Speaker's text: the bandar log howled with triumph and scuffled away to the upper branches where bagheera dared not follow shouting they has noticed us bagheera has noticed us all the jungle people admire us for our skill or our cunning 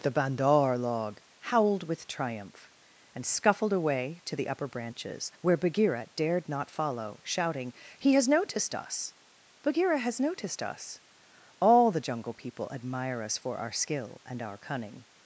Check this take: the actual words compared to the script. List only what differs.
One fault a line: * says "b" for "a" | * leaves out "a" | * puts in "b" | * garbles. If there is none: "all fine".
* says "he" for "they"
* says "and" for "or"